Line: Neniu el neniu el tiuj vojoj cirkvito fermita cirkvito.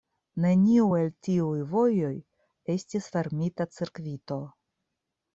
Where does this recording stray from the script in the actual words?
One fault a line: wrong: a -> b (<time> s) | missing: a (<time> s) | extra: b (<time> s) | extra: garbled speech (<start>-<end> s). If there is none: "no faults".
missing: neniu el (1.1 s)
wrong: cirkvito -> estis (2.7 s)